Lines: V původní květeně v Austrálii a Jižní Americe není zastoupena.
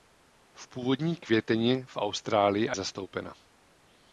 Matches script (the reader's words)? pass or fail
fail